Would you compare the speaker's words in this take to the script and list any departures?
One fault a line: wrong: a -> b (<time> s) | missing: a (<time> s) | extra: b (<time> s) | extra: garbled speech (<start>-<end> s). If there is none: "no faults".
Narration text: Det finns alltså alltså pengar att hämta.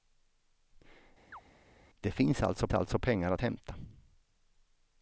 no faults